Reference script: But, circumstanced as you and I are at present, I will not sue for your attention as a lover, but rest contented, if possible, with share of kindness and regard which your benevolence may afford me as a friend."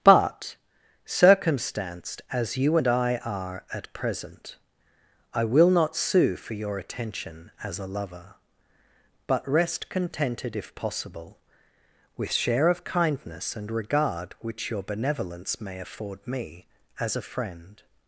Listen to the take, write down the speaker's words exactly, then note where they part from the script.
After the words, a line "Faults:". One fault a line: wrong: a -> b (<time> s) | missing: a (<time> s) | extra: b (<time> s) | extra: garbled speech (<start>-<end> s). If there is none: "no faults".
But, circumstanced as you and I are at present, I will not sue for your attention as a lover, but rest contented, if possible, with share of kindness and regard which your benevolence may afford me as a friend."
Faults:
no faults